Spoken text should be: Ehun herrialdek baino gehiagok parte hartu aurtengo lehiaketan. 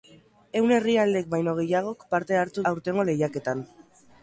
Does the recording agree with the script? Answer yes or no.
yes